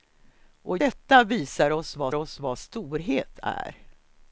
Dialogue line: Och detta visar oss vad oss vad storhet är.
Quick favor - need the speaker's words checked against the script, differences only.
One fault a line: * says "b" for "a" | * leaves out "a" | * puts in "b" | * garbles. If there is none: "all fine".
all fine